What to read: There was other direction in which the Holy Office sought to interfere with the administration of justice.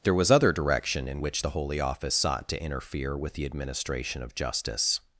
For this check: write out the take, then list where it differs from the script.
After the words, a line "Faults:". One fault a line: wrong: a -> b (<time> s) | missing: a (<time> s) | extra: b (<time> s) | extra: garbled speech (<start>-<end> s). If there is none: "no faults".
There was other direction in which the Holy Office sought to interfere with the administration of justice.
Faults:
no faults